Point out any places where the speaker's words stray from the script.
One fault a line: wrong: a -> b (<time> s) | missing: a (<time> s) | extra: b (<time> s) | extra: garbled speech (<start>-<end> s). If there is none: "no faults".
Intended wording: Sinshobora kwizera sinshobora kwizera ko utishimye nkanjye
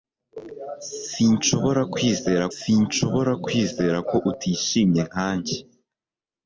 no faults